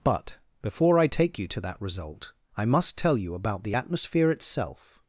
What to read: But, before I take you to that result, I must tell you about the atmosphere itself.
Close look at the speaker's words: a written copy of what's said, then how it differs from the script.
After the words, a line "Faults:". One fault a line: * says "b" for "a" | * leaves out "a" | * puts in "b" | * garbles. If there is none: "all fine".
But, before I take you to that result, I must tell you about the atmosphere itself.
Faults:
all fine